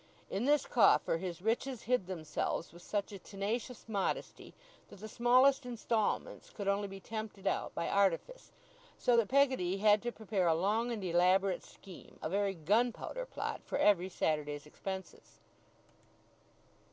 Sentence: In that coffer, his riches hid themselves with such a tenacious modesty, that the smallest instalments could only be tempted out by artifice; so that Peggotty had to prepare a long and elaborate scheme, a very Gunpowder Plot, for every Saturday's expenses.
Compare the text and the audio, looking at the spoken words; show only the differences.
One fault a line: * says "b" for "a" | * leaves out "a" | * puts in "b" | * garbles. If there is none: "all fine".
* says "this" for "that"